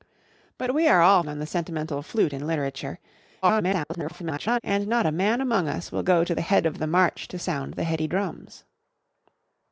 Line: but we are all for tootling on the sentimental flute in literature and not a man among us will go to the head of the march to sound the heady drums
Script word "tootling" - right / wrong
wrong